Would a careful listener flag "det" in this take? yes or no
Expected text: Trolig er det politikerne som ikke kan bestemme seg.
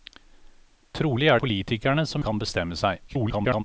yes